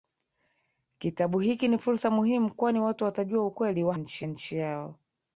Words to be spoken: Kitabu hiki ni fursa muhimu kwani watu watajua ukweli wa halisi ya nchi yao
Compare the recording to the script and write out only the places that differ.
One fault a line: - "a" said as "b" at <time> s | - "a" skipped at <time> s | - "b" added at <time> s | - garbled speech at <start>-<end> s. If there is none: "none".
- "halisi" said as "nchi" at 4.0 s